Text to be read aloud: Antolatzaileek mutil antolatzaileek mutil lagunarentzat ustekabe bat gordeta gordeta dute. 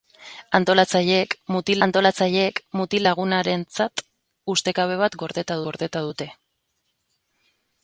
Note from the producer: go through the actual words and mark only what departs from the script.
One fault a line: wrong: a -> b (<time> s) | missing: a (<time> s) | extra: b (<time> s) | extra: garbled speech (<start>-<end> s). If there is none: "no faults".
no faults